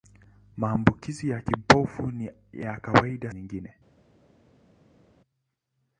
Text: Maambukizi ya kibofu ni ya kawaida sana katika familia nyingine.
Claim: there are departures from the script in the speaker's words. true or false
true